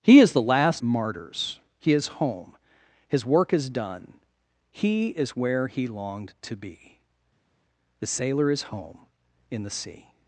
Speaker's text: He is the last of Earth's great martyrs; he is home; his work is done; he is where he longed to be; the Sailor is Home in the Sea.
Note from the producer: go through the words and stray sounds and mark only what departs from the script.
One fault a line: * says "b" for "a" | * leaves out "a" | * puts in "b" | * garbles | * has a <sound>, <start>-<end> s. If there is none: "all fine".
* leaves out "of Earth's great"